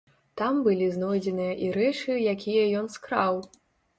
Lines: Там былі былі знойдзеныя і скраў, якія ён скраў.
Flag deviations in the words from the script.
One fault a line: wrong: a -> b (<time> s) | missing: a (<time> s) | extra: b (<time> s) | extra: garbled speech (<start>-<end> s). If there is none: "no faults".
missing: былі (0.8 s)
wrong: скраў -> рэчы (1.8 s)